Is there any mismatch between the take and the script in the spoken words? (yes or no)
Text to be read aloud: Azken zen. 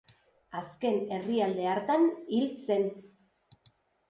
yes